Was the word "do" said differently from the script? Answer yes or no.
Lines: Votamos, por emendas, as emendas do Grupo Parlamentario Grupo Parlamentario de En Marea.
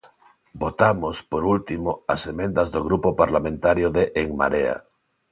no